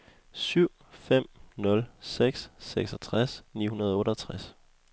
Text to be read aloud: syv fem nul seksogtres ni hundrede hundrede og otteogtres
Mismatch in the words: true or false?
true